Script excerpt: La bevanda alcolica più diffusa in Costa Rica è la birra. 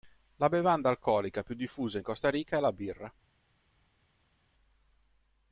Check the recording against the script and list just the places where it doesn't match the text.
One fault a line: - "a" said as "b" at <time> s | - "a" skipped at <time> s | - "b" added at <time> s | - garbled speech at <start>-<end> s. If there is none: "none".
none